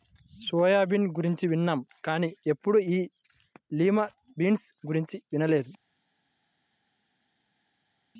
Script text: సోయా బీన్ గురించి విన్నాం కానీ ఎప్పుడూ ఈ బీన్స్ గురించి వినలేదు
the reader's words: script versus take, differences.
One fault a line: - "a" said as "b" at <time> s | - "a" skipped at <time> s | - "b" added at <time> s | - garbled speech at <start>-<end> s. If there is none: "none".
- "లిమా" added at 3.7 s